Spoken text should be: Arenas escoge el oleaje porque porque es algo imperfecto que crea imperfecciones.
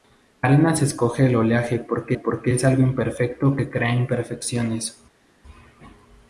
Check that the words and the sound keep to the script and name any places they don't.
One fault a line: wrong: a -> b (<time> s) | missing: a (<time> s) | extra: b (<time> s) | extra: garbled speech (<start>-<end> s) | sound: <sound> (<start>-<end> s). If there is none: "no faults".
no faults